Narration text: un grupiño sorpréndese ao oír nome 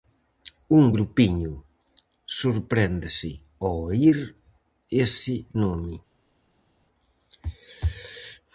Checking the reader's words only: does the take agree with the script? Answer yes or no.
no